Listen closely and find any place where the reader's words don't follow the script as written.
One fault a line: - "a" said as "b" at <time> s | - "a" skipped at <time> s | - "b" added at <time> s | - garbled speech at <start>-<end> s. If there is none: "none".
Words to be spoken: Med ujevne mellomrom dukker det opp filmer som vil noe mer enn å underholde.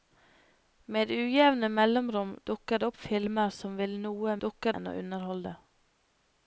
- "mer" said as "dukker" at 4.5 s